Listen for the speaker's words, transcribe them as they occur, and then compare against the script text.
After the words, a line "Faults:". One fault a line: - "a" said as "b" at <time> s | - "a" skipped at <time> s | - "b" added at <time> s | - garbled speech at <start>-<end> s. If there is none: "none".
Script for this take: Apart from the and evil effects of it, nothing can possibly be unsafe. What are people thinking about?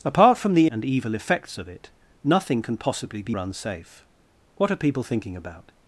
Apart from the and evil effects of it, nothing can possibly be unsafe. What are people thinking about?
Faults:
none